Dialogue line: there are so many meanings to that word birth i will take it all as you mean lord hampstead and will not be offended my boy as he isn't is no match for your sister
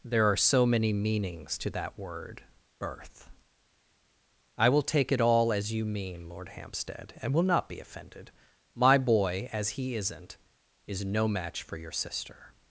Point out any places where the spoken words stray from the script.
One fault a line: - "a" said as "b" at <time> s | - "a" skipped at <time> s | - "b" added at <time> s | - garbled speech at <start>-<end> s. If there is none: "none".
none